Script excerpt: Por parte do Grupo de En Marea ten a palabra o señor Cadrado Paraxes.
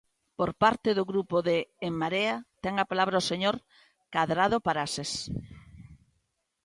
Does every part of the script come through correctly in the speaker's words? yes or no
yes